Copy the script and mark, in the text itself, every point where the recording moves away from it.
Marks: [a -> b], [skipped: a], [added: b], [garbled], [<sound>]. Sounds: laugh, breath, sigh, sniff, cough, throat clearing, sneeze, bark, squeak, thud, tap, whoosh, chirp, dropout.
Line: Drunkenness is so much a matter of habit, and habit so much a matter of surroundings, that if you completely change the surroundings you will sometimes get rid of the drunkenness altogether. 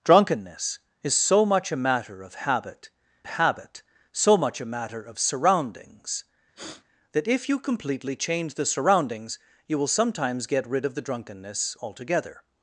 Drunkenness is so much a matter of habit, [skipped: and] habit so much a matter of surroundings, [sniff] that if you completely change the surroundings you will sometimes get rid of the drunkenness altogether.